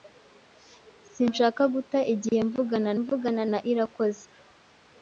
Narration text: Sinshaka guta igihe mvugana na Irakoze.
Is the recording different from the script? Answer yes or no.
yes